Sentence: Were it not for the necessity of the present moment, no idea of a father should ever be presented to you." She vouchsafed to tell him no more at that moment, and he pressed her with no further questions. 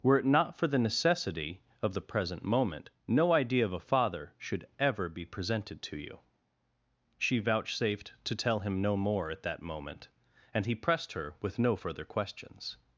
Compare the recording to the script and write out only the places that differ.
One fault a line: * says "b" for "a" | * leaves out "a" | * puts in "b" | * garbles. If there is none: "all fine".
all fine